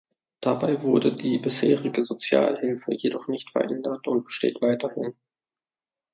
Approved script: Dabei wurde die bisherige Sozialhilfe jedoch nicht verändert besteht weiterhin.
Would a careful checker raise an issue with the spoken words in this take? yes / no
yes